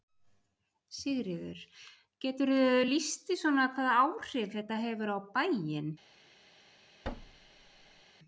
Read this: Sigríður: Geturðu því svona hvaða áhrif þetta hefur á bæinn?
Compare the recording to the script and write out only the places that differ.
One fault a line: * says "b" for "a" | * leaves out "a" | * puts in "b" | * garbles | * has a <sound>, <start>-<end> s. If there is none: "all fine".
* puts in "lýst"
* has a thud, 7.0-8.0 s